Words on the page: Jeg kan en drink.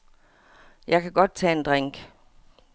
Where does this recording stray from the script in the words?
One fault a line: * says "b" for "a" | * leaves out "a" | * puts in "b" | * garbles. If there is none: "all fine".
* puts in "godt tage"